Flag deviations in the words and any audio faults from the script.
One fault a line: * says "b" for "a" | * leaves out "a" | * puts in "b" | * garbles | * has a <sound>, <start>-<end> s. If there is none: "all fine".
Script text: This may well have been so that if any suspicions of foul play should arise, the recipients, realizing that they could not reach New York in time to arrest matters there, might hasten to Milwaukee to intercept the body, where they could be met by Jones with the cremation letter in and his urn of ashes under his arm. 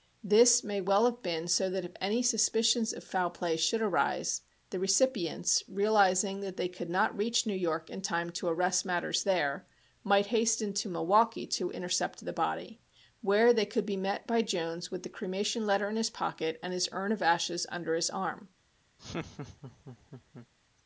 * puts in "his pocket"
* has a laugh, 19.0-20.5 s